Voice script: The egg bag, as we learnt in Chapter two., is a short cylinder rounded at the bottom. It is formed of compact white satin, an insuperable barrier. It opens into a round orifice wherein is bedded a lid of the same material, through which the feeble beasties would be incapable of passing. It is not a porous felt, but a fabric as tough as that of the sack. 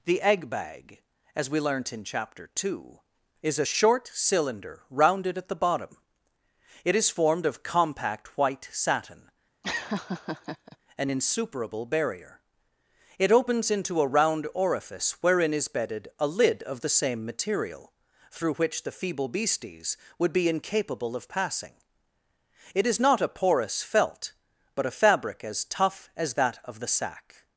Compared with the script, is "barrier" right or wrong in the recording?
right